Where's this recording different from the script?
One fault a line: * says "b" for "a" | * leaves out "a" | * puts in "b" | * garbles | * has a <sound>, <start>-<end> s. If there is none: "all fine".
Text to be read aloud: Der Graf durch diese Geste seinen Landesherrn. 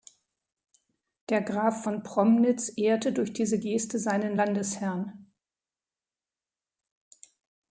* puts in "von Promnitz ehrte"